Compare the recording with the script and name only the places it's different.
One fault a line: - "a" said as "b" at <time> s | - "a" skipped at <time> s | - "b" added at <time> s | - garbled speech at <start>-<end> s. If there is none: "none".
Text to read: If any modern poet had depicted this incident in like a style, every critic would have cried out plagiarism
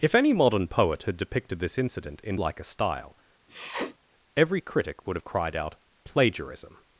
none